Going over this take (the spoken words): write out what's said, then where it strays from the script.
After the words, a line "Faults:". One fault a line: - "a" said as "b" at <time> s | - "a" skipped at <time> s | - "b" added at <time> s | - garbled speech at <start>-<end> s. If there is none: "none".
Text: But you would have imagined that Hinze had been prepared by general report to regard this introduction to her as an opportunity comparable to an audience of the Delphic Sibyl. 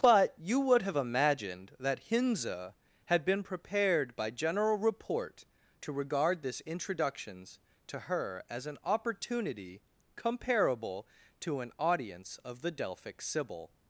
But you would have imagined that Hinze had been prepared by general report to regard this introductions to her as an opportunity comparable to an audience of the Delphic Sibyl.
Faults:
- "introduction" said as "introductions" at 6.6 s